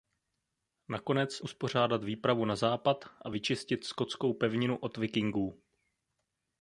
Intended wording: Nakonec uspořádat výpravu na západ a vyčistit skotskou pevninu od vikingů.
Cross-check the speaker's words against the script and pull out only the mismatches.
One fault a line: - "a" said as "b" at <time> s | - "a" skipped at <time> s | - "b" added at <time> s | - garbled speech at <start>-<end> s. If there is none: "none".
none